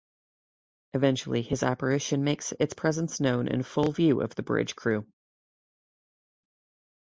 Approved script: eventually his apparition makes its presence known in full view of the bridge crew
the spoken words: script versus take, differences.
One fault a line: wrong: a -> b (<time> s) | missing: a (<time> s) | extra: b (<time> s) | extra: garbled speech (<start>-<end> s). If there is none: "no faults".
no faults